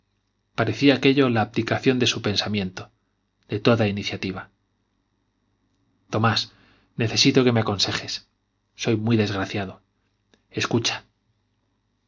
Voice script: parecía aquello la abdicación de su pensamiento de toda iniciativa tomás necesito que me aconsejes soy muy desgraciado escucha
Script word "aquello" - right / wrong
right